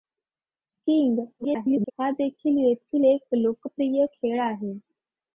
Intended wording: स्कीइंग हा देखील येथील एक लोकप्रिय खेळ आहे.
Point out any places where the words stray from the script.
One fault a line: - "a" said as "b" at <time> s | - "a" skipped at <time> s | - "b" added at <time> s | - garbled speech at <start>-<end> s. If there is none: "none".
- garbled speech at 1.4-1.9 s